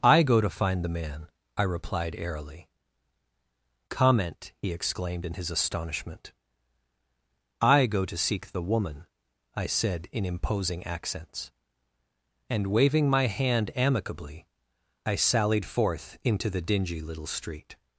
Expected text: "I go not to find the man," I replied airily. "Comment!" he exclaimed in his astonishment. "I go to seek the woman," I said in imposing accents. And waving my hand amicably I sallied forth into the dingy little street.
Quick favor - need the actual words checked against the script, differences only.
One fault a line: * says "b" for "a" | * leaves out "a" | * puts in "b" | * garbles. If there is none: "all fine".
* leaves out "not"